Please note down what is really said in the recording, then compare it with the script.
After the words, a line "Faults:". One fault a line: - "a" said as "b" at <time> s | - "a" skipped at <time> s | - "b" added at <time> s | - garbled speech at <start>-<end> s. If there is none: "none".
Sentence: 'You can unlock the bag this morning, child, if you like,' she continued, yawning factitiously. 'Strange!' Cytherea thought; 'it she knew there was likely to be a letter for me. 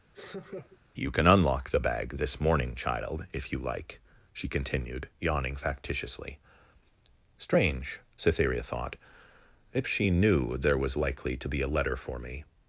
'You can unlock the bag this morning, child, if you like,' she continued, yawning factitiously. 'Strange!' Cytherea thought; 'it she knew there was likely to be a letter for me.
Faults:
none